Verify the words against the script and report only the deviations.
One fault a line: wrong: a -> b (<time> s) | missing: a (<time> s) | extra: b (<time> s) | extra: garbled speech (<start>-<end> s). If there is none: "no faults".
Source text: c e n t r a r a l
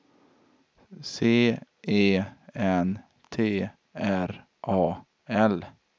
missing: r a (5.1 s)